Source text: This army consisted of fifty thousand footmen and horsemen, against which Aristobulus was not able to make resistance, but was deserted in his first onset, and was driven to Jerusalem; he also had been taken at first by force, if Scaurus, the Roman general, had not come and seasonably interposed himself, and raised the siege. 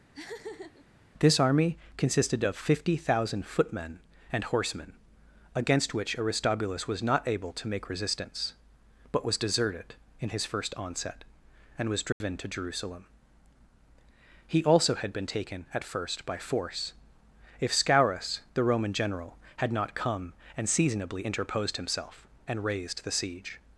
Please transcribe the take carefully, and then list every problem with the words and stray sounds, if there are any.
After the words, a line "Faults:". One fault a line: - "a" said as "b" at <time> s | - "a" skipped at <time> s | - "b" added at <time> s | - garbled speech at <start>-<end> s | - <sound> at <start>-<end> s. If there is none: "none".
This army consisted of fifty thousand footmen and horsemen, against which Aristobulus was not able to make resistance, but was deserted in his first onset, and was driven to Jerusalem; he also had been taken at first by force, if Scaurus, the Roman general, had not come and seasonably interposed himself, and raised the siege.
Faults:
- laugh at 0.1-0.9 s
- dropout at 12.1-12.2 s